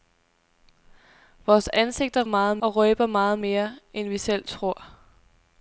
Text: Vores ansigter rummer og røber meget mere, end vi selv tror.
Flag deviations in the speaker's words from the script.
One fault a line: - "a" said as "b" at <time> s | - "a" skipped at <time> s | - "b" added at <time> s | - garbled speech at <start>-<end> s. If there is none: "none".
- "rummer" said as "meget" at 2.2 s